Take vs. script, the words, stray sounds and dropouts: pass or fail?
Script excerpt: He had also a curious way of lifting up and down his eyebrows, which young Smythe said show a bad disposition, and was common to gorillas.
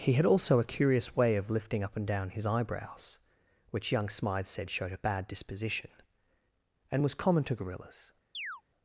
fail